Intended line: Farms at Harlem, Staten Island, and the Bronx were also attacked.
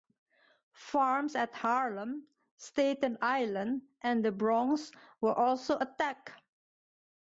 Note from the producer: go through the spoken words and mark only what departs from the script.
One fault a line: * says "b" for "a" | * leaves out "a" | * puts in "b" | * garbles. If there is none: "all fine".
all fine